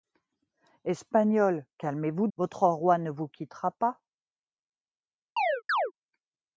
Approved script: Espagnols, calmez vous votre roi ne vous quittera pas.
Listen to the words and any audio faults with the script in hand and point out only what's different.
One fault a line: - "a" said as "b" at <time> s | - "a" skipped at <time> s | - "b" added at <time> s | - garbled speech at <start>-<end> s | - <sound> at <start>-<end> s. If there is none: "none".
- chirp at 5.4-5.9 s